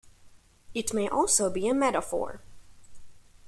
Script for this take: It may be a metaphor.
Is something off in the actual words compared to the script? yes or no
yes